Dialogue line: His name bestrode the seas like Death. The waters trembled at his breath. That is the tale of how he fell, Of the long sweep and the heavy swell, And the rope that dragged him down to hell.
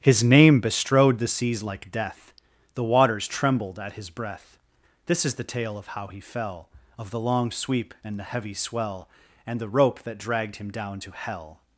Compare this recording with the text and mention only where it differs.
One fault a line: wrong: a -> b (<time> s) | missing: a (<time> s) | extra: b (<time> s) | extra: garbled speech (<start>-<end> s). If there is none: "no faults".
wrong: That -> This (5.0 s)